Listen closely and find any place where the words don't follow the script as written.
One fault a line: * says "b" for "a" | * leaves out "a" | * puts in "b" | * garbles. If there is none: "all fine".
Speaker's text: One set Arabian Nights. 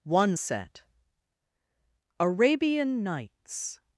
all fine